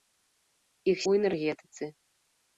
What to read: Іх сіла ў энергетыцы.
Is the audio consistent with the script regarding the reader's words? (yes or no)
no